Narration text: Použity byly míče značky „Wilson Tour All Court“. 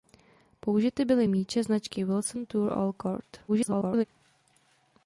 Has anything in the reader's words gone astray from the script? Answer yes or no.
yes